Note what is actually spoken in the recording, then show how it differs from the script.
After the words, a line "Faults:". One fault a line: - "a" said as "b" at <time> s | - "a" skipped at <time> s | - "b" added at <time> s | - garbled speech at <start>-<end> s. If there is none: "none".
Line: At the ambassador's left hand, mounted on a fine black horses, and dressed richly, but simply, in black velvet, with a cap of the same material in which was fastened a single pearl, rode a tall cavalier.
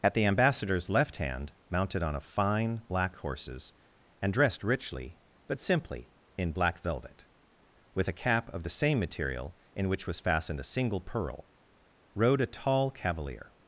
At the ambassador's left hand, mounted on a fine black horses, and dressed richly, but simply, in black velvet, with a cap of the same material in which was fastened a single pearl, rode a tall cavalier.
Faults:
none